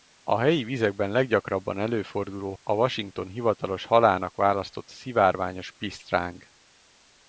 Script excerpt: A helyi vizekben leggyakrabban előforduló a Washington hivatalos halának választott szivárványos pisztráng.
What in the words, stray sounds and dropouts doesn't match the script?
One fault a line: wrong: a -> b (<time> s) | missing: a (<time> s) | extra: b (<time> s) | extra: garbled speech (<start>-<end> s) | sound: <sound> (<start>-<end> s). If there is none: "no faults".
no faults